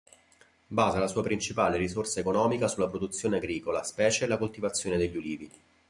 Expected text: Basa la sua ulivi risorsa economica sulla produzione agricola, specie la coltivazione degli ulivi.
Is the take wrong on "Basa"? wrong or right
right